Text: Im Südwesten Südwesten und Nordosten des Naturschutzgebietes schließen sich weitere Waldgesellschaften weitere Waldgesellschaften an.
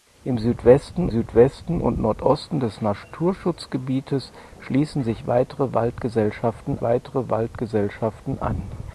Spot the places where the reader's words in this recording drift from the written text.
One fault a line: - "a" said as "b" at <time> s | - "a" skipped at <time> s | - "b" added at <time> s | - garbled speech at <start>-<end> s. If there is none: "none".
none